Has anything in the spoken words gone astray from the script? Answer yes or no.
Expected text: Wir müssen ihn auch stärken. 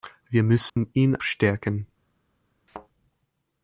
yes